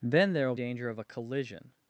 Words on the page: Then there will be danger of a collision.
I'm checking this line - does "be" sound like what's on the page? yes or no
no